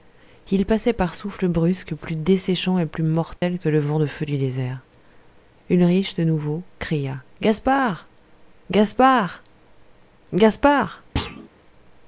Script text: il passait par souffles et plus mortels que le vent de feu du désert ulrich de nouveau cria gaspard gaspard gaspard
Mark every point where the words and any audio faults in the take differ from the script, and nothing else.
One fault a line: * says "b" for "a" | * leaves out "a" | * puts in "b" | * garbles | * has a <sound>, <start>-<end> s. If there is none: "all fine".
* puts in "brusques plus desséchants"
* has a dropout, 3.4-3.4 s
* has a thud, 11.2-11.5 s